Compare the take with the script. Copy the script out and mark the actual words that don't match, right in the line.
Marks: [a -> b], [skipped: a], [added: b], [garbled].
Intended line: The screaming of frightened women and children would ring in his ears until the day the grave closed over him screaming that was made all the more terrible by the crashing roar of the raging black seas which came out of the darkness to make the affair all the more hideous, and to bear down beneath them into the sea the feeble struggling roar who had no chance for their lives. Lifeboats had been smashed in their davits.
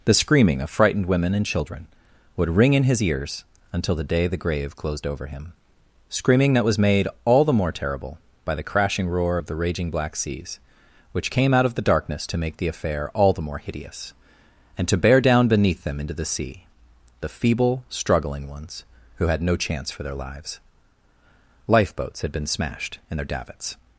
The screaming of frightened women and children would ring in his ears until the day the grave closed over him screaming that was made all the more terrible by the crashing roar of the raging black seas which came out of the darkness to make the affair all the more hideous, and to bear down beneath them into the sea the feeble struggling [roar -> ones] who had no chance for their lives. Lifeboats had been smashed in their davits.